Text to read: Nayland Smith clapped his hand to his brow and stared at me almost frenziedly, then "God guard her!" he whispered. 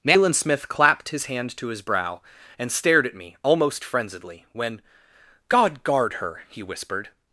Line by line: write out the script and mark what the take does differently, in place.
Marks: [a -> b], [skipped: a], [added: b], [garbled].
Nayland Smith clapped his hand to his brow and stared at me almost frenziedly, [then -> when] "God guard her!" he whispered.